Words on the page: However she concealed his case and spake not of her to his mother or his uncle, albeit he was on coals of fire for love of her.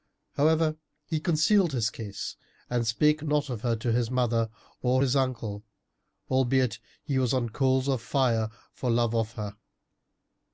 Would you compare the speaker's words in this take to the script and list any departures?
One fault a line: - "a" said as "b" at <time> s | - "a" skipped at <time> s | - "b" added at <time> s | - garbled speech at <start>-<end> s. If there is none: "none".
- "she" said as "he" at 1.1 s